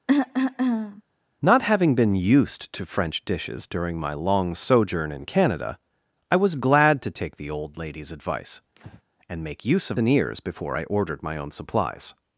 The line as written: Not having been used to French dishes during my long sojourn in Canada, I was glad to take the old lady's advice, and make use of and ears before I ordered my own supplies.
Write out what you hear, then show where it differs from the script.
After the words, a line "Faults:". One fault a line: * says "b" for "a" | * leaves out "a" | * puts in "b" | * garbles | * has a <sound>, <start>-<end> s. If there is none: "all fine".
Not having been used to French dishes during my long sojourn in Canada, I was glad to take the old lady's advice, and make use of and ears before I ordered my own supplies.
Faults:
* has a cough, 0.1-1.0 s
* has a breath, 8.8-9.0 s